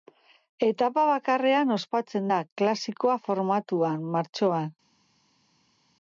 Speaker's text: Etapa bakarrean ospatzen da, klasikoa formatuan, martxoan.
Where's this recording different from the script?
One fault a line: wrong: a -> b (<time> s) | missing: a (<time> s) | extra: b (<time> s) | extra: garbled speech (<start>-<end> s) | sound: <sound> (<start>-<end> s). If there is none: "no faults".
no faults